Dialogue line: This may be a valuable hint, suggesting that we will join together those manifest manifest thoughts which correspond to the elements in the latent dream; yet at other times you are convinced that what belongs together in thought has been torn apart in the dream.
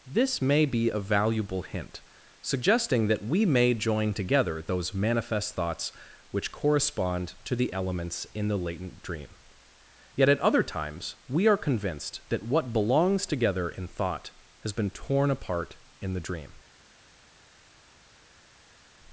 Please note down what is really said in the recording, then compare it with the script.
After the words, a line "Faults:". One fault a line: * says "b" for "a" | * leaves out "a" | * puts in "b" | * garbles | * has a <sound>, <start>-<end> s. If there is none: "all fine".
This may be a valuable hint, suggesting that we may join together those manifest thoughts which correspond to the elements in the latent dream; yet at other times we are convinced that what belongs together in thought has been torn apart in the dream.
Faults:
* says "may" for "will"
* leaves out "manifest"
* says "we" for "you"